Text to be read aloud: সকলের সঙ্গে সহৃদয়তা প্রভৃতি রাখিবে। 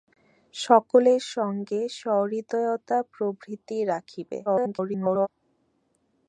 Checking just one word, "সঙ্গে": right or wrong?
right